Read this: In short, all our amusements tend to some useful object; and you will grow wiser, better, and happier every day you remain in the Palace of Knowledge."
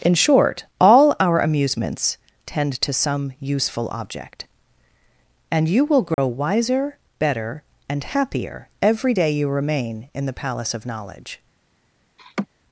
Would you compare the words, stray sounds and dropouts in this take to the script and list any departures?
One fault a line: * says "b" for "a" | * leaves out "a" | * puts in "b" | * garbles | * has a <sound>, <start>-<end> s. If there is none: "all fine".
* has a dropout, 6.1-6.2 s
* has a laugh, 12.2-12.5 s